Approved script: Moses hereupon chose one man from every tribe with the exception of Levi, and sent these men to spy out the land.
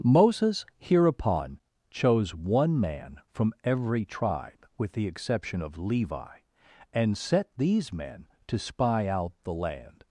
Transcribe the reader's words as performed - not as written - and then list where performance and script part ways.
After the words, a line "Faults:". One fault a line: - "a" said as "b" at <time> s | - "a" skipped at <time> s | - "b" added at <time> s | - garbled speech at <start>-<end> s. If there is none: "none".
Moses hereupon chose one man from every tribe with the exception of Levi, and set these men to spy out the land.
Faults:
- "sent" said as "set" at 7.2 s